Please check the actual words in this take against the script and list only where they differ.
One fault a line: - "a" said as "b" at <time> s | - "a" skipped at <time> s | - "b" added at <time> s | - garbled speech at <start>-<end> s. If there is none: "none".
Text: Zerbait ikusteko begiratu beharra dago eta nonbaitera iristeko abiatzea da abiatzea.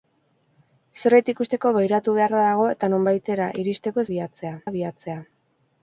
none